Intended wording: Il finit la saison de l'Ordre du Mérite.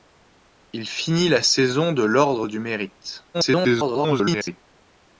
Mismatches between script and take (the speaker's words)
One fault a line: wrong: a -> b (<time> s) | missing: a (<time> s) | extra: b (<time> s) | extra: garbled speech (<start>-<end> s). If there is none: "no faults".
extra: garbled speech (3.3-4.6 s)